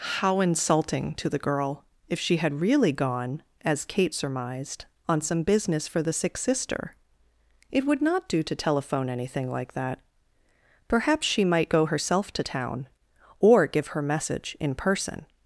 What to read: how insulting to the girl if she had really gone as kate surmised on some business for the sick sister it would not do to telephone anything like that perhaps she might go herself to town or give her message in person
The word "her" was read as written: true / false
true